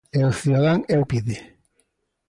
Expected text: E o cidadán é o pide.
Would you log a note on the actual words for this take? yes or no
no